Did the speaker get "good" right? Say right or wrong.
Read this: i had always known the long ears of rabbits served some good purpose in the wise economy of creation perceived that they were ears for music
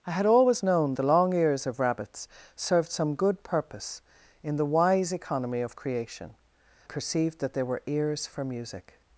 right